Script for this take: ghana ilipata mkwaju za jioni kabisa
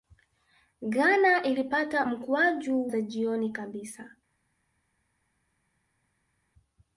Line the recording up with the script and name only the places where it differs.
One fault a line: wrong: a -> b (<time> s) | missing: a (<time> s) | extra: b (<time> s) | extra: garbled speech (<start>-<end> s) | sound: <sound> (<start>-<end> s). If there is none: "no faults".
no faults